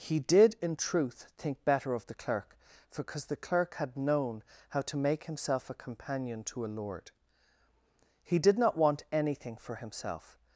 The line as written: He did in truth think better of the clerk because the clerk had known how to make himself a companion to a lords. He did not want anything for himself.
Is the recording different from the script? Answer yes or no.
yes